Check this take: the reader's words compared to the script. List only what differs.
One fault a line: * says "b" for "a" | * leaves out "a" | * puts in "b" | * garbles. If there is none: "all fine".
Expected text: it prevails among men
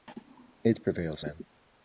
* leaves out "among"